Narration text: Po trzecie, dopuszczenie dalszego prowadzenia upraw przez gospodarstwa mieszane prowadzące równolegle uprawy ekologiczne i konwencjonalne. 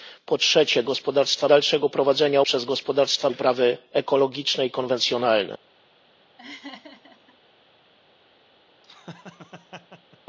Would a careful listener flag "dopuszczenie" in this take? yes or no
yes